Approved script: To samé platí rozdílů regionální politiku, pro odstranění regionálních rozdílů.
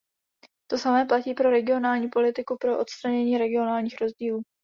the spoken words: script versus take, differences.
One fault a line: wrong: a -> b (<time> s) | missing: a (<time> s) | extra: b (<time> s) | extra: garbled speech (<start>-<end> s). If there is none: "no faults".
wrong: rozdílů -> pro (1.3 s)